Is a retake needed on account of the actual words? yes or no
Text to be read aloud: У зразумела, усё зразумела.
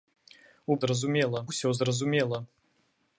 no